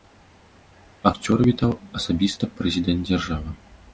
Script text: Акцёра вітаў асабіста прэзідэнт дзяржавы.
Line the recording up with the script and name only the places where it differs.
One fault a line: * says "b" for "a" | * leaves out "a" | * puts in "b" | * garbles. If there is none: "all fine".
all fine